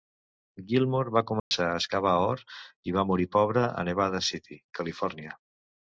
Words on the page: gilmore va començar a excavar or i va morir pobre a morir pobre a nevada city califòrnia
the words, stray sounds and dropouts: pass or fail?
fail